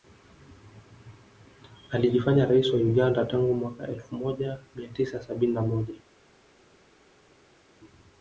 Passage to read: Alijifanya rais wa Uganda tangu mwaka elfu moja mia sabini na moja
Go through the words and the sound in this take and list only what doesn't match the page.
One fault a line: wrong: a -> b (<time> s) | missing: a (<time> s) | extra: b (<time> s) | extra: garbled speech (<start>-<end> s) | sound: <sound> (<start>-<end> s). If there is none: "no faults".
extra: tisa (4.9 s)